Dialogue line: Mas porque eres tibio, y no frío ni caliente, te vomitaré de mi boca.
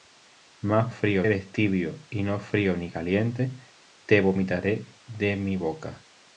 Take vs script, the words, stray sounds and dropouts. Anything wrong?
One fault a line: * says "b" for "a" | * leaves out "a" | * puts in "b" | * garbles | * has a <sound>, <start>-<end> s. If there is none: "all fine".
* says "frío" for "porque"